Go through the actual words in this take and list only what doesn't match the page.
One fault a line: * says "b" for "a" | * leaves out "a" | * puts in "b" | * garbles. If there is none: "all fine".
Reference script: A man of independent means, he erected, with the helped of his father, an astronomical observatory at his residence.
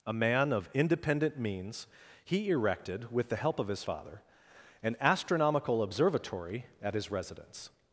* says "help" for "helped"